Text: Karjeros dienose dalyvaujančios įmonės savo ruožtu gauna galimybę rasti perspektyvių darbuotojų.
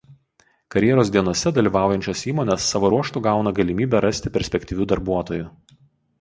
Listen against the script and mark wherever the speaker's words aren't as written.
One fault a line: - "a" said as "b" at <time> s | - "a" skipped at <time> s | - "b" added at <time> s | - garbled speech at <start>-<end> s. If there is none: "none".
none